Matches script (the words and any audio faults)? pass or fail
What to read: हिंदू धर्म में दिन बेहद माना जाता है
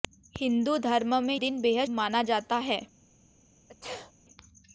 fail